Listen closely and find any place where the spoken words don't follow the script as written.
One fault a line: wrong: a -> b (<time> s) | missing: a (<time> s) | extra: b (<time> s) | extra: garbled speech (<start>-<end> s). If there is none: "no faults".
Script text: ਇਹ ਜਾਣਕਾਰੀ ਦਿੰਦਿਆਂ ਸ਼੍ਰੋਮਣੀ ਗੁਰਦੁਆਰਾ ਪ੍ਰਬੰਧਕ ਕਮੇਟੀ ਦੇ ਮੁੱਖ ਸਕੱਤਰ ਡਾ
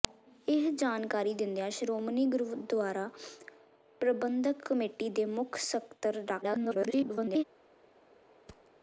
extra: garbled speech (6.4-7.4 s)